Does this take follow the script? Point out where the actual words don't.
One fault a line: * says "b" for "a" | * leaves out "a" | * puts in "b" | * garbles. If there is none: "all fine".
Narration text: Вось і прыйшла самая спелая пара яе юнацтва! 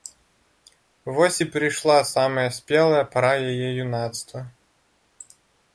all fine